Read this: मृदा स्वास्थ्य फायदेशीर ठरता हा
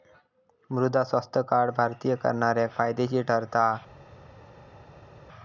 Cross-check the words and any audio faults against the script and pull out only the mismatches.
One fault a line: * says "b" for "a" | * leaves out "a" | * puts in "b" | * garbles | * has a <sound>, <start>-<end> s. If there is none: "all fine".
* puts in "कार्ड भारतीय करणाऱ्याक"